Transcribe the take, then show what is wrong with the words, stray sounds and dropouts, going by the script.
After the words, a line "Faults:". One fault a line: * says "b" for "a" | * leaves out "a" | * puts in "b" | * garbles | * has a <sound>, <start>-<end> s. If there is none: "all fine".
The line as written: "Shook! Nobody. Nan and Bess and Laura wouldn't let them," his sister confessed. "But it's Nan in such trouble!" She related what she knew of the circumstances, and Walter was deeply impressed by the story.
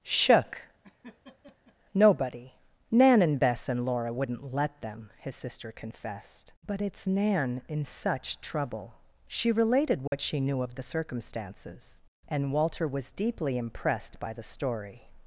"Shook! Nobody. Nan and Bess and Laura wouldn't let them," his sister confessed. "But it's Nan in such trouble!" She related what she knew of the circumstances, and Walter was deeply impressed by the story.
Faults:
* has a laugh, 0.8-1.8 s
* has a dropout, 10.1-10.1 s